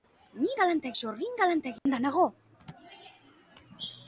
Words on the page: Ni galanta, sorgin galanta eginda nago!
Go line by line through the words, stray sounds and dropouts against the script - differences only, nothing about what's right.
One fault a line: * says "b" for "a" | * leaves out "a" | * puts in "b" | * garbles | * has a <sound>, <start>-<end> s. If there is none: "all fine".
* has a dropout, 1.8-1.9 s